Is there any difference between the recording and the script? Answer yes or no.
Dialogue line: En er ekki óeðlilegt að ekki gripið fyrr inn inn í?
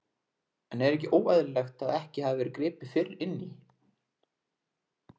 yes